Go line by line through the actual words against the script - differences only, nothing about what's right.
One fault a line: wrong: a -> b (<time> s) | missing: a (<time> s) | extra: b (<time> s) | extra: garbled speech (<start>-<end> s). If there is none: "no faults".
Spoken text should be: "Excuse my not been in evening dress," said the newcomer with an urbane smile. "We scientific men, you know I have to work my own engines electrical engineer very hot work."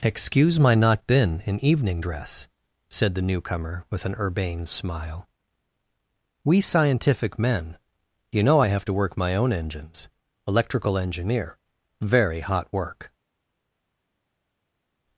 no faults